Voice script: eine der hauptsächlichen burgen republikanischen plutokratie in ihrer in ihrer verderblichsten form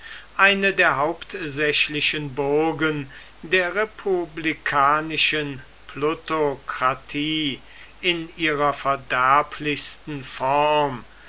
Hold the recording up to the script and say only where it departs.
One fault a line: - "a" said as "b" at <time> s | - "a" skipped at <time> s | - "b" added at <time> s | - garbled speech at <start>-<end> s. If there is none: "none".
- "der" added at 3.4 s
- "in ihrer" skipped at 8.7 s